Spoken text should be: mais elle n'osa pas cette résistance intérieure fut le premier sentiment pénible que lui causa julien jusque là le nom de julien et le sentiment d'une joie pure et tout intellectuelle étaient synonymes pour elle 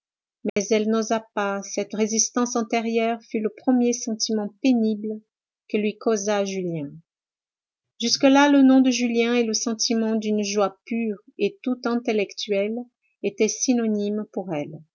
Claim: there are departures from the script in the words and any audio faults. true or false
true